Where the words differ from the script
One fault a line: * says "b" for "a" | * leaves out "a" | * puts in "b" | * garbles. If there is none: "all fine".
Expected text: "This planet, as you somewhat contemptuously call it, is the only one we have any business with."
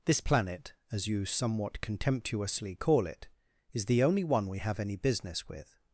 all fine